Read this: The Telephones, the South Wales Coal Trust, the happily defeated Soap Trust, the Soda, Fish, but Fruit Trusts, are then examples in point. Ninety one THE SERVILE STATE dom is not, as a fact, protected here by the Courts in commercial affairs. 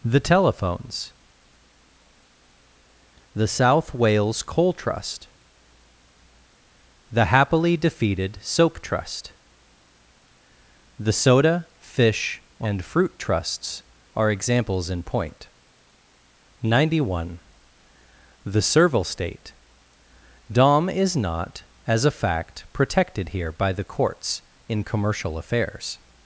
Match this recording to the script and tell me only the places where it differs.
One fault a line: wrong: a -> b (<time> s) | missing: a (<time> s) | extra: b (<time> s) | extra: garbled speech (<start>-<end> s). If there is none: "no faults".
wrong: but -> and (12.6 s)
missing: then (14.3 s)